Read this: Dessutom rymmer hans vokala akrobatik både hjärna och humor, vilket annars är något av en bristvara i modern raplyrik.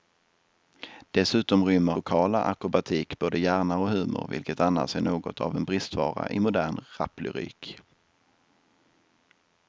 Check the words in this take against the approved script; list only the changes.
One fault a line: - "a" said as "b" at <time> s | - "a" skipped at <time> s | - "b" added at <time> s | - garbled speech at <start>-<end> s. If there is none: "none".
- "hans" skipped at 1.9 s